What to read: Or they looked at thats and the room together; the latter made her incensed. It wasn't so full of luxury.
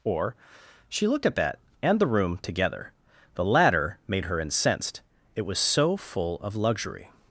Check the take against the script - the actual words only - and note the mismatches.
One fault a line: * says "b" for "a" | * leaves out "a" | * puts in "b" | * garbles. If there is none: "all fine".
* says "she" for "they"
* says "that" for "thats"
* says "was" for "wasn't"